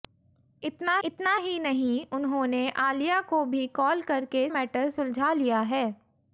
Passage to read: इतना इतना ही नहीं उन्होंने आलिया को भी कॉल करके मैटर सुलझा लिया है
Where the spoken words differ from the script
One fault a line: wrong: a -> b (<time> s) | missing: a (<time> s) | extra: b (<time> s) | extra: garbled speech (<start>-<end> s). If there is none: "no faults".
no faults